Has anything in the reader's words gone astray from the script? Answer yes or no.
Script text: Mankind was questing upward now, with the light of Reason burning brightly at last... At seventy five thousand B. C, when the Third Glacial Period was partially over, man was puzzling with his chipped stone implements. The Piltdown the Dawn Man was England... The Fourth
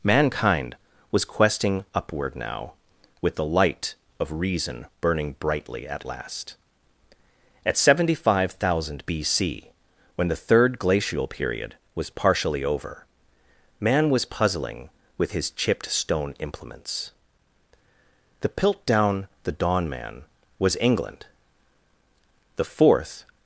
no